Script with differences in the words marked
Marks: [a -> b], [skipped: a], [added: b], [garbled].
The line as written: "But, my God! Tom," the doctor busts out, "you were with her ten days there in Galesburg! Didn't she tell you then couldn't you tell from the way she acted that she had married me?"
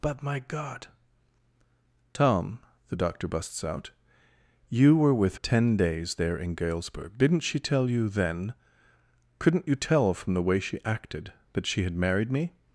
"But, my God! Tom," the doctor busts out, "you were with [skipped: her] ten days there in Galesburg! Didn't she tell you then couldn't you tell from the way she acted that she had married me?"